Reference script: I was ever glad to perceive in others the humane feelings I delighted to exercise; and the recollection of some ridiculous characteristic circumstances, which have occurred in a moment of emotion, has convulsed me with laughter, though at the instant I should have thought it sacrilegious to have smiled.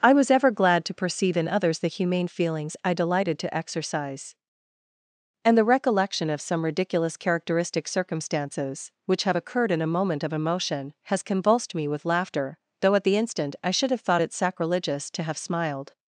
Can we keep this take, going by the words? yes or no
yes